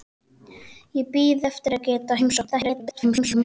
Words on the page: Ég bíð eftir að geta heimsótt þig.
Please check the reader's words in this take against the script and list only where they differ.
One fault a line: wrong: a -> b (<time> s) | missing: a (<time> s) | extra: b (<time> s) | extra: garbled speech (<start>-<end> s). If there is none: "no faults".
extra: garbled speech (2.5-3.4 s)